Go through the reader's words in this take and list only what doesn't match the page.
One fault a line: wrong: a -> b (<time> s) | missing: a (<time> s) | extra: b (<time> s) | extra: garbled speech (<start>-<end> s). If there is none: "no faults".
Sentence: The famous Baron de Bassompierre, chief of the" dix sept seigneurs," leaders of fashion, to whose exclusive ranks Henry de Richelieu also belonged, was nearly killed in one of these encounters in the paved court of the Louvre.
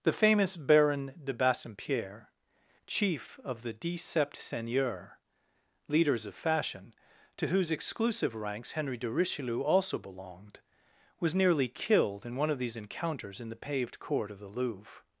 no faults